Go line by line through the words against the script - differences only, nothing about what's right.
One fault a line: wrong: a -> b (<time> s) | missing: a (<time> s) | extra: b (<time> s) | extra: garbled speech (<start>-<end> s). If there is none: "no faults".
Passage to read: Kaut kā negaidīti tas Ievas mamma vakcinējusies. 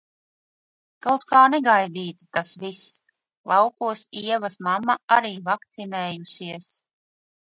extra: viss Laukos (2.6 s)
extra: arī (5.2 s)